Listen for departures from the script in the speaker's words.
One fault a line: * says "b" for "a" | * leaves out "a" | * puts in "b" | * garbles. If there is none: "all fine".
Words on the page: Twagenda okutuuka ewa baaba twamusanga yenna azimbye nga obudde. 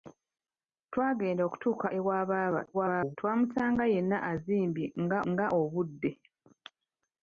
* garbles
* puts in "nga"